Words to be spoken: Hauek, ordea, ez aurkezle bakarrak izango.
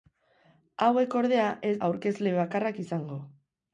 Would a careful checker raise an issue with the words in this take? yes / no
no